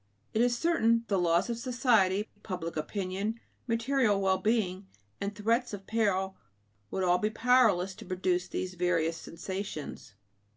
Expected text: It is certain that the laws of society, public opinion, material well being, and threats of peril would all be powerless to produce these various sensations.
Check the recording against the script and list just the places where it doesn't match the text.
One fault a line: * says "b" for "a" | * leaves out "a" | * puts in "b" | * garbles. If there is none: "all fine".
* leaves out "that"